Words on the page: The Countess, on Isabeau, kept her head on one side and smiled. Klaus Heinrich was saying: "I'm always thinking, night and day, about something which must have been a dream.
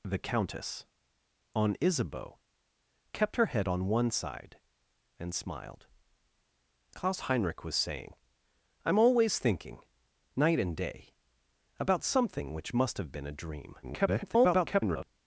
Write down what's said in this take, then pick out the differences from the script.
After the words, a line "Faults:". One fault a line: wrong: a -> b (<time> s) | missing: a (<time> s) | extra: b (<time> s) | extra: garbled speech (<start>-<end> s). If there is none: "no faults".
The Countess, on Isabeau, kept her head on one side and smiled. Klaus Heinrich was saying: "I'm always thinking, night and day, about something which must have been a dream. [garbled]
Faults:
extra: garbled speech (13.8-15.1 s)